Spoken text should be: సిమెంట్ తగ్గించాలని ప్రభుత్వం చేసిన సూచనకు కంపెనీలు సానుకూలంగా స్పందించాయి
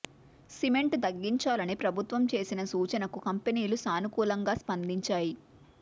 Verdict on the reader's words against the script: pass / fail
pass